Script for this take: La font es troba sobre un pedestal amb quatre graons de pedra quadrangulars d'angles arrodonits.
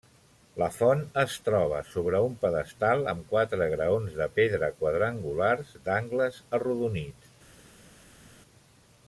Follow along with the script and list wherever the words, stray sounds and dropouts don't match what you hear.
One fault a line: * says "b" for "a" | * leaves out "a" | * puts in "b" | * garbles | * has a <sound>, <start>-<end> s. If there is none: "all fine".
all fine